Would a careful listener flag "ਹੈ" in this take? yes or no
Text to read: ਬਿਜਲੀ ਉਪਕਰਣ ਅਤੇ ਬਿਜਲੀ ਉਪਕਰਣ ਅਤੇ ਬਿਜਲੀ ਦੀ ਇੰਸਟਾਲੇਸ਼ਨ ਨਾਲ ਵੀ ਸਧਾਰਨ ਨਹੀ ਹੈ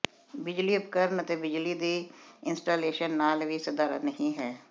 no